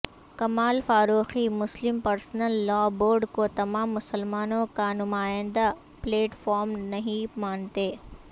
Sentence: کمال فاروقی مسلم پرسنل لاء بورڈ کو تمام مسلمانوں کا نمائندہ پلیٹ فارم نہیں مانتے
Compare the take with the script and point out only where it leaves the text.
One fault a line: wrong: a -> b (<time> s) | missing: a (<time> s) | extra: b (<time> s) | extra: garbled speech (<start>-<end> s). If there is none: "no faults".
no faults